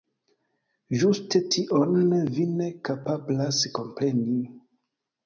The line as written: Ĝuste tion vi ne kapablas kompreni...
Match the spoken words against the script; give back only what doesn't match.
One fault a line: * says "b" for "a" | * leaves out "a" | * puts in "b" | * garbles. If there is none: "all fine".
all fine